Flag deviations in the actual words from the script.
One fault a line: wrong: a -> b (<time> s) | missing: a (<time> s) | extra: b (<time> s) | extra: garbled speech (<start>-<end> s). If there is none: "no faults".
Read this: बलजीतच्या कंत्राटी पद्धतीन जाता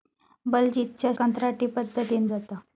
no faults